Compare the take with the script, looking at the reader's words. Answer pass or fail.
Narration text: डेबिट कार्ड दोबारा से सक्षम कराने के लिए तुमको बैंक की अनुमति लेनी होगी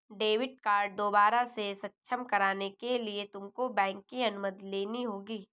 pass